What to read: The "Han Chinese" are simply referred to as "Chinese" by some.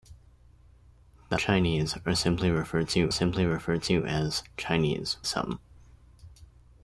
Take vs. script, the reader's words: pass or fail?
fail